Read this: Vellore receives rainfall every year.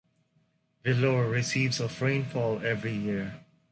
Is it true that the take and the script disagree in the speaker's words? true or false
true